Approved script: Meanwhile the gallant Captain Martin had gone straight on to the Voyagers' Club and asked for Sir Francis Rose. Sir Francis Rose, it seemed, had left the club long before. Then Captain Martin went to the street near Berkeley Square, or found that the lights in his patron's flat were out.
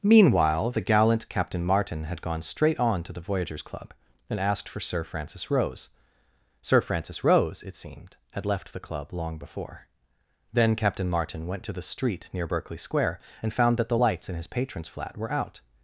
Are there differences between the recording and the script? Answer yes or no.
yes